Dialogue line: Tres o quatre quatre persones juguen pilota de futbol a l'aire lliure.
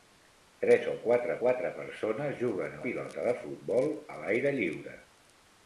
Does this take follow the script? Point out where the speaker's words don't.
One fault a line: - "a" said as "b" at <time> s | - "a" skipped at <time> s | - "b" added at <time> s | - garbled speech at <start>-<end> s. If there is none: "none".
none